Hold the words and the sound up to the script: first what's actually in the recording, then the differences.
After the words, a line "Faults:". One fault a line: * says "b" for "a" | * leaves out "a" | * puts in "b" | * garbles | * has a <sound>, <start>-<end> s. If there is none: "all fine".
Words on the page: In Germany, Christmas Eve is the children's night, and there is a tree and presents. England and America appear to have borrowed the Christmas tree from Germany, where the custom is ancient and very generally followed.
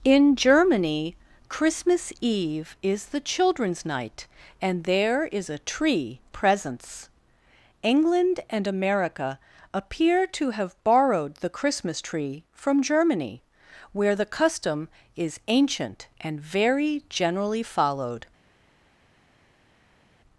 In Germany, Christmas Eve is the children's night, and there is a tree presents. England and America appear to have borrowed the Christmas tree from Germany, where the custom is ancient and very generally followed.
Faults:
* leaves out "and"